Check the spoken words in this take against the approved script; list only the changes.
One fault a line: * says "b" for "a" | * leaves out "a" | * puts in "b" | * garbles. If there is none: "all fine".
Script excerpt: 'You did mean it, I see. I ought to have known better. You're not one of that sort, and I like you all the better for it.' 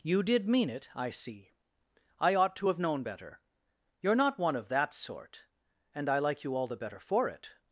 all fine